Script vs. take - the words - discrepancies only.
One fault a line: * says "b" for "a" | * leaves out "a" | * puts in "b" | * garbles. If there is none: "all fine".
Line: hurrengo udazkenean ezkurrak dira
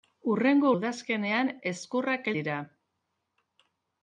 all fine